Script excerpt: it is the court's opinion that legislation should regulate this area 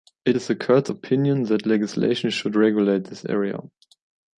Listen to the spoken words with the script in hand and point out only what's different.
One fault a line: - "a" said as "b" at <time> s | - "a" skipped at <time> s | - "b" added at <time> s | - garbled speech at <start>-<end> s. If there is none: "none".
none